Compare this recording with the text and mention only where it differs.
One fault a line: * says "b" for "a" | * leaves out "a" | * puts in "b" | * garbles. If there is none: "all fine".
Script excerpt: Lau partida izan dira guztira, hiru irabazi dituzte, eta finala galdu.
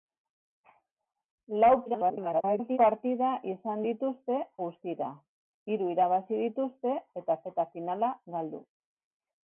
* garbles
* says "dituzte" for "dira"
* puts in "eta"